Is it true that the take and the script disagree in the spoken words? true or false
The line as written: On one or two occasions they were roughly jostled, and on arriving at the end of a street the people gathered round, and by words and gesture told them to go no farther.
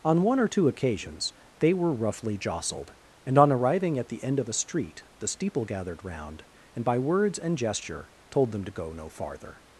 true